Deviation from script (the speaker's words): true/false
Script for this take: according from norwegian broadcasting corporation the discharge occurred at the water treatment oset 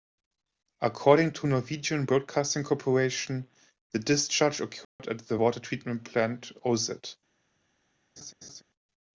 true